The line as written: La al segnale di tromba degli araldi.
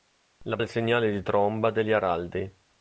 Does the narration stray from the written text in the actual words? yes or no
no